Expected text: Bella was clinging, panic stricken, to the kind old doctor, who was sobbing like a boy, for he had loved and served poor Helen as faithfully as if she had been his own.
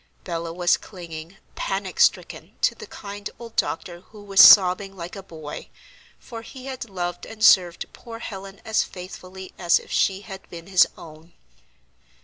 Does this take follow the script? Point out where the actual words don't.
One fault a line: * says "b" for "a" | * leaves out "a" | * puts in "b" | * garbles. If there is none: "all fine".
all fine